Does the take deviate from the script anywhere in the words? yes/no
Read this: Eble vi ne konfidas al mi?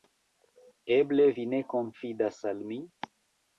no